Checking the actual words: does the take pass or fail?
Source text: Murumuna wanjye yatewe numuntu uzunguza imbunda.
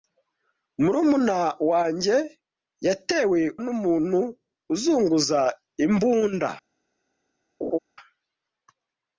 pass